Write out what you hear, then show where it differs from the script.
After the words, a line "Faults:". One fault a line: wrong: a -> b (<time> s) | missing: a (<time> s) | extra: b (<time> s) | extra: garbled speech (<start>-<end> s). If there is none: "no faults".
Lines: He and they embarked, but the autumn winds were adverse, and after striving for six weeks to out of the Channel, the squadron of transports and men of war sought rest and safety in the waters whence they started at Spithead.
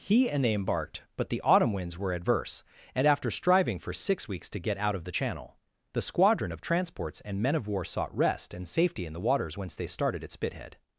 He and they embarked, but the autumn winds were adverse, and after striving for six weeks to get out of the Channel, the squadron of transports and men of war sought rest and safety in the waters whence they started at Spithead.
Faults:
extra: get (4.6 s)